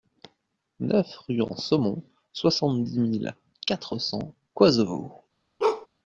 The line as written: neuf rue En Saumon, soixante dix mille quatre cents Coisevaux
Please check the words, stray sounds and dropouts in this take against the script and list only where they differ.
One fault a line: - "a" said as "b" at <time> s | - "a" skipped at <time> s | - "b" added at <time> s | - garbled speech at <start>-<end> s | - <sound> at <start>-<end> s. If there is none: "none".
- bark at 5.6-5.9 s